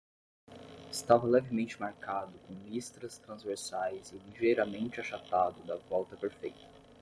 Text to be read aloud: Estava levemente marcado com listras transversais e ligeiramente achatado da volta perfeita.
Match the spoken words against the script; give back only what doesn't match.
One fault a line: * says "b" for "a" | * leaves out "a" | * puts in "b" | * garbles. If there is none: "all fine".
all fine